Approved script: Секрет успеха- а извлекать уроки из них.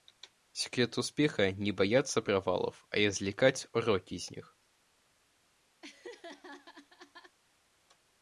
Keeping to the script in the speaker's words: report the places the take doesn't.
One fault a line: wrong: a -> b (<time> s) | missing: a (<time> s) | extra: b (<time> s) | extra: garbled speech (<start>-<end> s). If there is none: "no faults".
extra: не бояться провалов (1.5 s)